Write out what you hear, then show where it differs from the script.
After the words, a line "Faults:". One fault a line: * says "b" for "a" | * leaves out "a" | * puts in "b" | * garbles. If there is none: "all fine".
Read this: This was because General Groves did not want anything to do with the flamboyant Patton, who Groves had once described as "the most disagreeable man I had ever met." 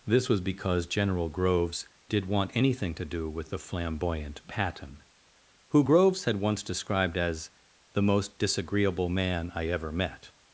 This was because General Groves did want anything to do with the flamboyant Patton, who Groves had once described as "the most disagreeable man I ever met."
Faults:
* leaves out "not"
* leaves out "had"